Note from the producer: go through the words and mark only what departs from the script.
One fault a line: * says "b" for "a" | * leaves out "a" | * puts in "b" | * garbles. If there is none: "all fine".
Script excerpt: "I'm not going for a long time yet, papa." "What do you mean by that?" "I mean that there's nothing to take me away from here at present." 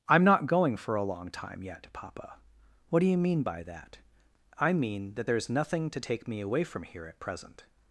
all fine